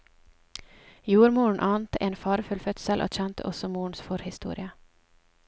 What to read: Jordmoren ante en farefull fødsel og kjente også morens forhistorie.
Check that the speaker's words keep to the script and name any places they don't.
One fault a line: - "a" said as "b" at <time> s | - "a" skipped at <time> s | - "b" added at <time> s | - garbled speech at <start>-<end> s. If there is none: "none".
none